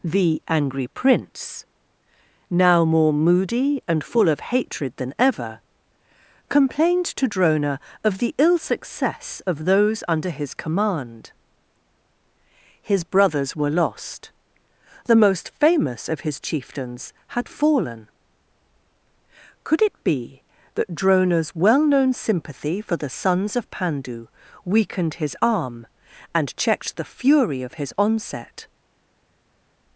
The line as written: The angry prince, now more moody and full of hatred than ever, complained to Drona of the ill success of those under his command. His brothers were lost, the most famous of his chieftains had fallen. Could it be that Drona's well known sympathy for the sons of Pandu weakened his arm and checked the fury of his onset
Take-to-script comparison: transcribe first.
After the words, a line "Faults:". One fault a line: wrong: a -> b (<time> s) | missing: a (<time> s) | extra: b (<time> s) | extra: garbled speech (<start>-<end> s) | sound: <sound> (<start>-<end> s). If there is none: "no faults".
The angry prince, now more moody and full of hatred than ever, complained to Drona of the ill success of those under his command. His brothers were lost, the most famous of his chieftains had fallen. Could it be that Drona's well known sympathy for the sons of Pandu weakened his arm and checked the fury of his onset
Faults:
no faults